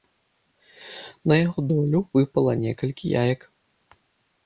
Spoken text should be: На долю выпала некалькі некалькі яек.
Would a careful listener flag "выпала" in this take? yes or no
no